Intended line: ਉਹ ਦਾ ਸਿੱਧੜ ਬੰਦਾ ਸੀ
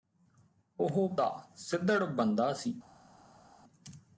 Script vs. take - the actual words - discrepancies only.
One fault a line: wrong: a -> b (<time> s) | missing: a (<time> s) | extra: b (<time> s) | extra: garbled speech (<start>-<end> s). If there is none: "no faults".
no faults